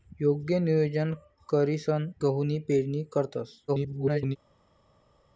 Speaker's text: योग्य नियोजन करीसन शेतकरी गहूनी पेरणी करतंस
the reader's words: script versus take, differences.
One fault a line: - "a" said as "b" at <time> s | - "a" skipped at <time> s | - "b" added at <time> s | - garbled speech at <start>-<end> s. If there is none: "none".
- "शेतकरी" skipped at 2.1 s
- garbled speech at 3.7-4.4 s